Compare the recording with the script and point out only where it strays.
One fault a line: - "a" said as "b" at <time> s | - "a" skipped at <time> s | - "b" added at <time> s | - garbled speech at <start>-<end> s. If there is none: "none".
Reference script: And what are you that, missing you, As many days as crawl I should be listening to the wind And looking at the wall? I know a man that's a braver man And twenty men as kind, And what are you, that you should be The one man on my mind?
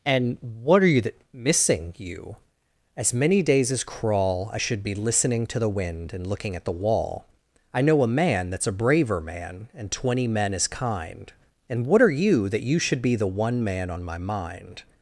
none